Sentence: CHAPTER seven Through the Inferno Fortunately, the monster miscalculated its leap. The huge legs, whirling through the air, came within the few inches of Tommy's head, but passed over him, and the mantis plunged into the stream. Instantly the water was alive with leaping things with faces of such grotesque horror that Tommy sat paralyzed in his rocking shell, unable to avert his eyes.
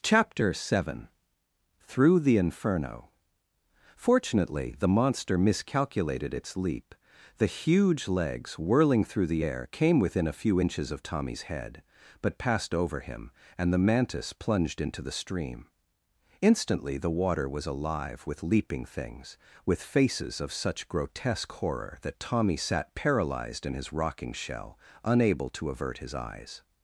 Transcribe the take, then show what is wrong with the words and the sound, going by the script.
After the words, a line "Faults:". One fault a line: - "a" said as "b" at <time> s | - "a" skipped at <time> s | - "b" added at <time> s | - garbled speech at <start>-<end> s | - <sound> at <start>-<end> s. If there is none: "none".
CHAPTER seven Through the Inferno Fortunately, the monster miscalculated its leap. The huge legs, whirling through the air, came within a few inches of Tommy's head, but passed over him, and the mantis plunged into the stream. Instantly the water was alive with leaping things with faces of such grotesque horror that Tommy sat paralyzed in his rocking shell, unable to avert his eyes.
Faults:
- "the" said as "a" at 10.2 s